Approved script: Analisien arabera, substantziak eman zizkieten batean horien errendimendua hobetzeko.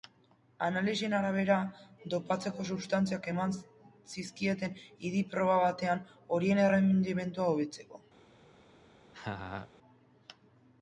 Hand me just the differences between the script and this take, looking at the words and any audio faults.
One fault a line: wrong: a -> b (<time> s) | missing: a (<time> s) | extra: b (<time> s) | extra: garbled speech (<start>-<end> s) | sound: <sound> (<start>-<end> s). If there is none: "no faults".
extra: dopatzeko (2.1 s)
extra: idi proba (5.1 s)
sound: laugh (9.1-9.7 s)